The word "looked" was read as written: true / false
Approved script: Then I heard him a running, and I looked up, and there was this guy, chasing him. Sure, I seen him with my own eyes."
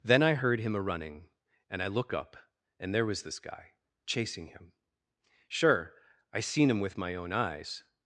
false